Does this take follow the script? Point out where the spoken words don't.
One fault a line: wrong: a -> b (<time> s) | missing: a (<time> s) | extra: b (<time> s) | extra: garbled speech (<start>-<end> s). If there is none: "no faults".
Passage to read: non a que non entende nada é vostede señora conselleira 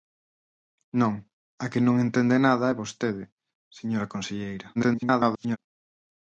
extra: garbled speech (4.8-5.6 s)